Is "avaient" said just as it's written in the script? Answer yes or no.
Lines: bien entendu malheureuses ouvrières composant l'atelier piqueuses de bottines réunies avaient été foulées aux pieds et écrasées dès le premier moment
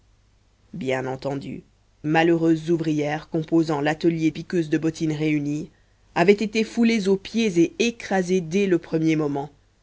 yes